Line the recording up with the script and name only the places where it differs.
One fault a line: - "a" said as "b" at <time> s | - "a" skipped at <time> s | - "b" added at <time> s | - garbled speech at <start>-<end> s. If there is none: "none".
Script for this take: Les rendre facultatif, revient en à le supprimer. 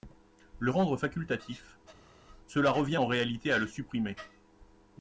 - "Les" said as "Le" at 0.6 s
- "cela" added at 2.4 s
- "réalité" added at 3.1 s